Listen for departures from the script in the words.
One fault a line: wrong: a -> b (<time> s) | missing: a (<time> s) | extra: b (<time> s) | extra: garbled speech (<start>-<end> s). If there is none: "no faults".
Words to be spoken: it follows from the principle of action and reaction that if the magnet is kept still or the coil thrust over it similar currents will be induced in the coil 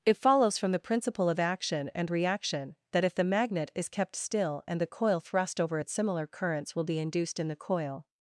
wrong: or -> and (4.7 s)